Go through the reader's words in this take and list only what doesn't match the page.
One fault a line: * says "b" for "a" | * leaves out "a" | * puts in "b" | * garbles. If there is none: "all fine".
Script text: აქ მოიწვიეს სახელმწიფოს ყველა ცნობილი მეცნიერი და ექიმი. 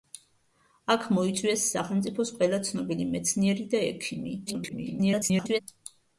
* garbles